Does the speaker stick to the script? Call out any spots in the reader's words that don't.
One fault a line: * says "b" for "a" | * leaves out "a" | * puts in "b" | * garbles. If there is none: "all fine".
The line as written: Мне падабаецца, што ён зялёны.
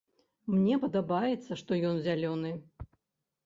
all fine